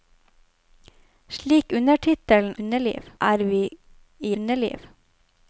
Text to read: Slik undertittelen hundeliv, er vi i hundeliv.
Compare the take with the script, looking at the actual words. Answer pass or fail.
pass